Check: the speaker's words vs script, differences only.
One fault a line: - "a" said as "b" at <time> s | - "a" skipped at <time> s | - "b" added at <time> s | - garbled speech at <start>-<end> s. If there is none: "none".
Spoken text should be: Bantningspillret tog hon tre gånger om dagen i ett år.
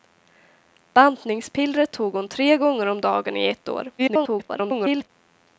- garbled speech at 4.0-5.1 s